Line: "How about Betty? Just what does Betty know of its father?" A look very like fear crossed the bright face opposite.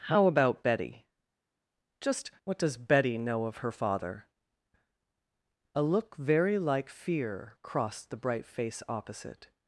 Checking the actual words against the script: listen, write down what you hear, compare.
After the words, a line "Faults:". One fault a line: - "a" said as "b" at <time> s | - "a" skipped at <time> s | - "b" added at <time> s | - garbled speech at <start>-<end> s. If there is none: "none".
"How about Betty? Just what does Betty know of her father?" A look very like fear crossed the bright face opposite.
Faults:
- "its" said as "her" at 3.6 s